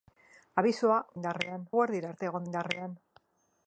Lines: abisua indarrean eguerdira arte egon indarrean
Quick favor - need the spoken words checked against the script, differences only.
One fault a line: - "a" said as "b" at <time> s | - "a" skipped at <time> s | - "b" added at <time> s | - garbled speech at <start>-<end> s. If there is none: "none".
none